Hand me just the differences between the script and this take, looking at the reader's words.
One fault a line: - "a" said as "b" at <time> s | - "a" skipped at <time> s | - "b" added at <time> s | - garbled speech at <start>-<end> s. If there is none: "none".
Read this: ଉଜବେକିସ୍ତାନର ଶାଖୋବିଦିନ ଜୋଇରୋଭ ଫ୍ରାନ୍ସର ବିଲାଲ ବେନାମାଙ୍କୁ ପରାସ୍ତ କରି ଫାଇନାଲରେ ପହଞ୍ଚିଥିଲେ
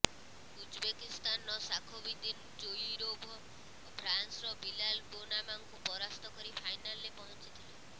none